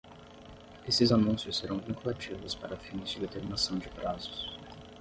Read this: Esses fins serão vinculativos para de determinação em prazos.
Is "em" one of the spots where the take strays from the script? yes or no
yes